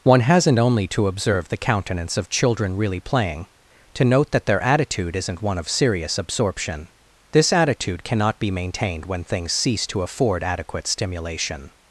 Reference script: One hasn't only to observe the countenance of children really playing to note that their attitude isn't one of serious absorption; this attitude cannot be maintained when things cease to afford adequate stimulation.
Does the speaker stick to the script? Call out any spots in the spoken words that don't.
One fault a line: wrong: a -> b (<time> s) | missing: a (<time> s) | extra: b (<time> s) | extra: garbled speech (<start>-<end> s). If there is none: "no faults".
no faults